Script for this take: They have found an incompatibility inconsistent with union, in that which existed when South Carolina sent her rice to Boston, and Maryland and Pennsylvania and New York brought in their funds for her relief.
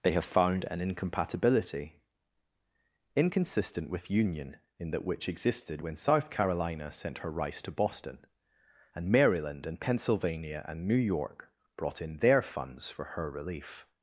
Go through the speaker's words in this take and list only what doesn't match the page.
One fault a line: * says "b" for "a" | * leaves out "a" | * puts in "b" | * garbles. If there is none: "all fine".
all fine